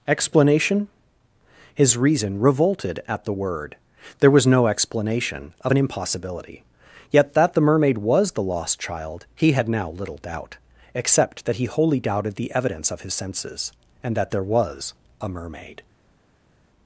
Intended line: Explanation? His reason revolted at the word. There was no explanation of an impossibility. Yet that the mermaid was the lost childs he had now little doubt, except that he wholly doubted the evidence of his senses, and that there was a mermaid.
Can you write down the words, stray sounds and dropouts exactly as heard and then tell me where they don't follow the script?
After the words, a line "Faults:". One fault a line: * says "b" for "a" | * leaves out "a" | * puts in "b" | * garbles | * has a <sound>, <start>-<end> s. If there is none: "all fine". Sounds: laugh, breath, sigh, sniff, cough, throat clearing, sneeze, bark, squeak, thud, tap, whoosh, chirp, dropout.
Explanation? His reason revolted at the word. There was no explanation of an impossibility. Yet that the mermaid was the lost child he had now little doubt, except that he wholly doubted the evidence of his senses, and that there was a mermaid.
Faults:
* says "child" for "childs"